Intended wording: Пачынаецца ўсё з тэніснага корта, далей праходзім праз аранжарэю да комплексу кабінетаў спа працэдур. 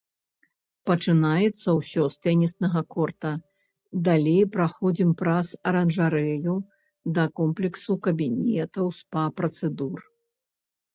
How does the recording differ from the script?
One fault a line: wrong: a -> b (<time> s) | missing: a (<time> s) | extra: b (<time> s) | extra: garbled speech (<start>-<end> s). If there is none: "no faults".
no faults